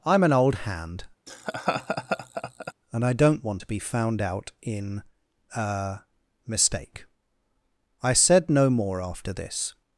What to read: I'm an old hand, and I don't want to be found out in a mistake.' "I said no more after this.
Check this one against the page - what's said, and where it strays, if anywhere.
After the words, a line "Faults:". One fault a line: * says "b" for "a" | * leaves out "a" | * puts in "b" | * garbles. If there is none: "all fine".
I'm an old hand, and I don't want to be found out in a mistake.' "I said no more after this.
Faults:
all fine